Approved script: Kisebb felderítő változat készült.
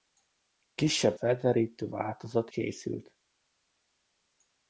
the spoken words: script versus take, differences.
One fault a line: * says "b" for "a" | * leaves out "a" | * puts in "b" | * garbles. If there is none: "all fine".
all fine